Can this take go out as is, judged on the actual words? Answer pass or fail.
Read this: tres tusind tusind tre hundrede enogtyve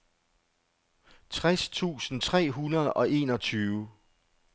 fail